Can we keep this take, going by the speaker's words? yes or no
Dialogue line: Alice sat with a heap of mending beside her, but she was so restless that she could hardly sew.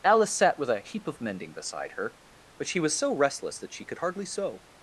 yes